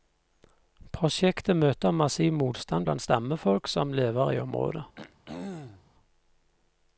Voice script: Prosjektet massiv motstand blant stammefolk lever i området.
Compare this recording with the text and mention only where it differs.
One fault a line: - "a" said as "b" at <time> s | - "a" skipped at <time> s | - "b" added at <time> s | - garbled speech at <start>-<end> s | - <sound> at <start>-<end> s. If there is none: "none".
- "møter" added at 1.6 s
- "som" added at 3.7 s
- throat clearing at 5.0-5.9 s